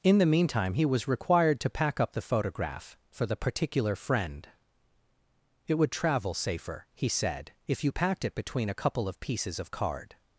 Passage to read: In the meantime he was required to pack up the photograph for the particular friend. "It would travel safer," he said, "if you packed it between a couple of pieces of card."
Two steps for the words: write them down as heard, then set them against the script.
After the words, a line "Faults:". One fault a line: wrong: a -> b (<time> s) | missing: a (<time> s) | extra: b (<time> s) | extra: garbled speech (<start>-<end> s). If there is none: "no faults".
In the meantime he was required to pack up the photograph for the particular friend. "It would travel safer," he said, "if you packed it between a couple of pieces of card."
Faults:
no faults